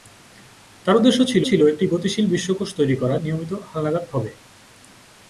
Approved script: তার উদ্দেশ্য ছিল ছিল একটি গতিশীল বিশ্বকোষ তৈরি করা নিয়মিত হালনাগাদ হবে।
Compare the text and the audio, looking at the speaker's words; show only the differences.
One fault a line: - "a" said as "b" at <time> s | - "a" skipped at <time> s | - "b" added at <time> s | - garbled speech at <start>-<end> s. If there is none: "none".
none